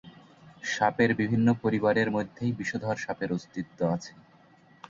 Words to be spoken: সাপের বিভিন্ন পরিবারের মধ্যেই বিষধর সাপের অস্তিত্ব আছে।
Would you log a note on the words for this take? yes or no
no